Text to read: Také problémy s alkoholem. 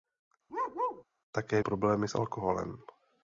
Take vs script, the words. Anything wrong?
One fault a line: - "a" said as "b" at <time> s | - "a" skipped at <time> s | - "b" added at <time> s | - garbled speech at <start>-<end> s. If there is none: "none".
none